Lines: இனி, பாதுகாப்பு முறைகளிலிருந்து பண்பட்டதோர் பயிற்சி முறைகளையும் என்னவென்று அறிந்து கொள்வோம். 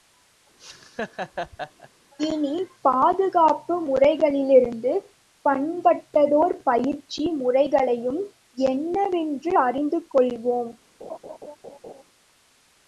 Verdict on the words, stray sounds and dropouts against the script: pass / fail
fail